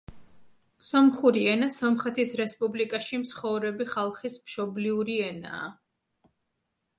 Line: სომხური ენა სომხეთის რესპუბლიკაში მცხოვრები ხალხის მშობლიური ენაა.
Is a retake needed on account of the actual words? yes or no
no